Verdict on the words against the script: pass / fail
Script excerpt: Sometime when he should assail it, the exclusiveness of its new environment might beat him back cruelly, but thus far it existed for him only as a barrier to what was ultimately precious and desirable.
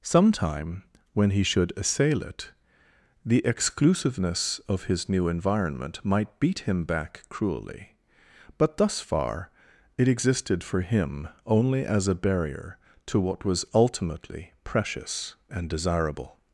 fail